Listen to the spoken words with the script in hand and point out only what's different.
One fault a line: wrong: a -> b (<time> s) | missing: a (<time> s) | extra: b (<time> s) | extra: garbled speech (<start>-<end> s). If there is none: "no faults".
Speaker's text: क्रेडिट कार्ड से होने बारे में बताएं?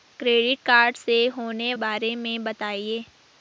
no faults